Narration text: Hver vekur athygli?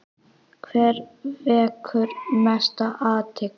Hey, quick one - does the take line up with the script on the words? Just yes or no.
no